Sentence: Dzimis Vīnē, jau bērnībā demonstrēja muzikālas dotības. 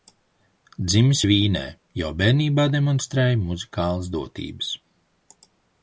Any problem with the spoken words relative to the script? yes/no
no